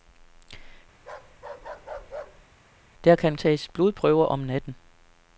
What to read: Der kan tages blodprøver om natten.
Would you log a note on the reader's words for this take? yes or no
no